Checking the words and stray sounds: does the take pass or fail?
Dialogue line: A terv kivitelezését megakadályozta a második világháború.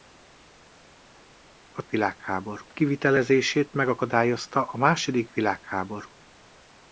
fail